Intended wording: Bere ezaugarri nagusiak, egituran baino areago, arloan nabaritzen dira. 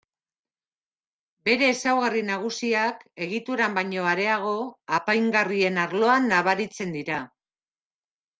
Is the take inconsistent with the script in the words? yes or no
yes